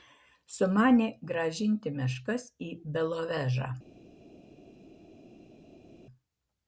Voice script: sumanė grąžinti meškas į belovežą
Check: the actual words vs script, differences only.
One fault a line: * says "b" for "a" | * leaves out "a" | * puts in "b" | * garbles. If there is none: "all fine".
all fine